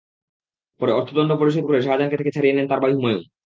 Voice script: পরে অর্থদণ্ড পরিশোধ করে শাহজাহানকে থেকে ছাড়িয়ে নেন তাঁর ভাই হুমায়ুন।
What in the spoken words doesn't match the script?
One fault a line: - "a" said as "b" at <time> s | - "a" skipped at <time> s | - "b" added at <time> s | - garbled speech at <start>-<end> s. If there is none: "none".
none